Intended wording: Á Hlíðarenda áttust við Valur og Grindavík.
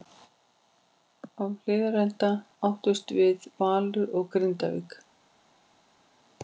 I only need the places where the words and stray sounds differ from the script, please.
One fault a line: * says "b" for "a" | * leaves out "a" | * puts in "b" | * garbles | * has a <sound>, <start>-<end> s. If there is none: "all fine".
all fine